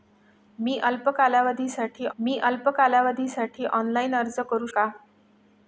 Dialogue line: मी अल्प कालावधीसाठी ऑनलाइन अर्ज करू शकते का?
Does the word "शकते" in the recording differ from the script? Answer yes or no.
yes